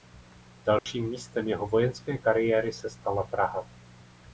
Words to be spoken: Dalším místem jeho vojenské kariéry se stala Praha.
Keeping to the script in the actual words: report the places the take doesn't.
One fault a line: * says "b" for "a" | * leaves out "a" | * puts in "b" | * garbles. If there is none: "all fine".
all fine